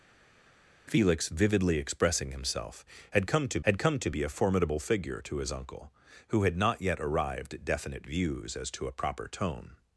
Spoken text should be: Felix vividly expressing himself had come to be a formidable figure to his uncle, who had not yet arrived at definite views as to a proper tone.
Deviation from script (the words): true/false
true